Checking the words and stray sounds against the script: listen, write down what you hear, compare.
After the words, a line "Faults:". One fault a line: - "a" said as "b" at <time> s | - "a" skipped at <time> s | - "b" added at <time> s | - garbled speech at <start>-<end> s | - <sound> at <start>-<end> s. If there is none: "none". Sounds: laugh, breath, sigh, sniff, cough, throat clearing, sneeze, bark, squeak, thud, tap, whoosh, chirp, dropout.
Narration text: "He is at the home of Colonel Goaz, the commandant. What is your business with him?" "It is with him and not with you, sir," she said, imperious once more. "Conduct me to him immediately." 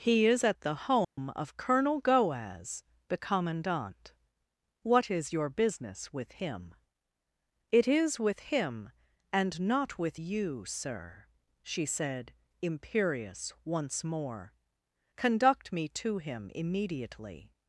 "He is at the home of Colonel Goaz, the commandant. What is your business with him?" "It is with him and not with you, sir," she said, imperious once more. "Conduct me to him immediately."
Faults:
- dropout at 1.0-1.2 s